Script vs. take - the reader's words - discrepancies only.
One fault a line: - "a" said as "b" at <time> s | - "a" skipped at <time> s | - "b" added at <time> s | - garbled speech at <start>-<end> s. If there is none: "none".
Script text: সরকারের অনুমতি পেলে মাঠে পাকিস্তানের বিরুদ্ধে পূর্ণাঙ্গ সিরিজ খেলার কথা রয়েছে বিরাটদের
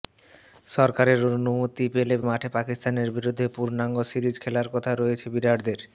none